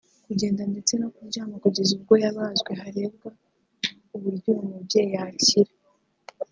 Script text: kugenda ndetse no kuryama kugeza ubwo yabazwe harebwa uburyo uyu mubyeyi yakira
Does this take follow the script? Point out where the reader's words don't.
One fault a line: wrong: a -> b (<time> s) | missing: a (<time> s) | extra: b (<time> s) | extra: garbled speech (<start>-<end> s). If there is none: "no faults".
no faults